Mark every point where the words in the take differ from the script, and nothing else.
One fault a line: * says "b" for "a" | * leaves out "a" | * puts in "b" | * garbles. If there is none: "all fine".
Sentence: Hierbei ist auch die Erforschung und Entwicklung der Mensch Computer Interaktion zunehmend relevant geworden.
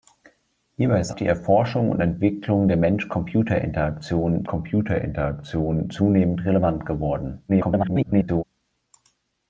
* leaves out "auch"
* puts in "Computer Interaktion"
* garbles